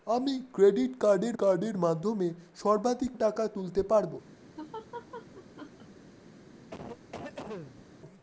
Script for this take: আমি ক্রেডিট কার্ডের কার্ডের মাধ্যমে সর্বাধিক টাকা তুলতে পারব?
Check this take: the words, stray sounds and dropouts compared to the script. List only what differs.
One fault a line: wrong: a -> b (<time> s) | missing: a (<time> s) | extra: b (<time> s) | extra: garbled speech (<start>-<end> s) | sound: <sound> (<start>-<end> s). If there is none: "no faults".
sound: laugh (4.6-5.9 s)
sound: cough (6.7-7.9 s)